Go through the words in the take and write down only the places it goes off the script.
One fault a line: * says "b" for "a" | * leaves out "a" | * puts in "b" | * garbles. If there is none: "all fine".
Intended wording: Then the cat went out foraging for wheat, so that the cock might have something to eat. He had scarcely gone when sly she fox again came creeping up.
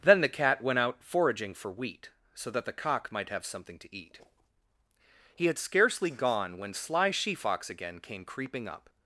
all fine